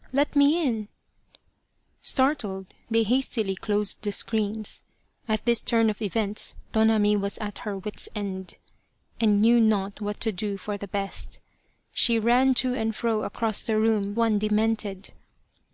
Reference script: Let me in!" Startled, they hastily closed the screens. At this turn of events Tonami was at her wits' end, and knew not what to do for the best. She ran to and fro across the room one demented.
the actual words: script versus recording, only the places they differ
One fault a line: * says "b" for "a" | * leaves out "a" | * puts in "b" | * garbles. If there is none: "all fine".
all fine